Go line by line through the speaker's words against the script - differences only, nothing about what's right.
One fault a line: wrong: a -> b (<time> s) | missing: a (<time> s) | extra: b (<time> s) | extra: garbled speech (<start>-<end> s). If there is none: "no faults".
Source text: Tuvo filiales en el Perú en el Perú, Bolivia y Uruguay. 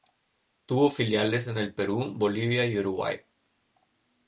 missing: en el Perú (2.1 s)